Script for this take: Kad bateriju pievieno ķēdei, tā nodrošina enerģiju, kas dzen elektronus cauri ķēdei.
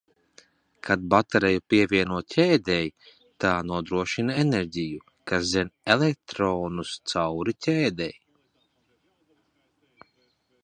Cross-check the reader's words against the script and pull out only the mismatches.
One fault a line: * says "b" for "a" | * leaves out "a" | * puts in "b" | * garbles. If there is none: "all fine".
all fine